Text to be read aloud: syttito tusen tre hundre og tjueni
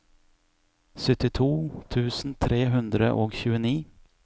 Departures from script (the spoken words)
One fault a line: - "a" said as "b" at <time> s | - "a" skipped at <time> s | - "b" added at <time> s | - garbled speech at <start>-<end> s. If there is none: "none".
none